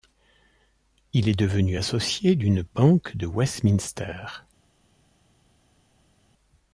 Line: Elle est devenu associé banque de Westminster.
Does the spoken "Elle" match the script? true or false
false